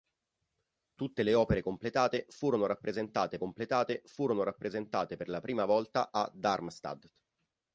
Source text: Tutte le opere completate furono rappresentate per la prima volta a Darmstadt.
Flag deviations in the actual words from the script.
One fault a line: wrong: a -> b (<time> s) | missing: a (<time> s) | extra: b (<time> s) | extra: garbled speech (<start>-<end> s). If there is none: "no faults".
extra: completate furono rappresentate (3.4 s)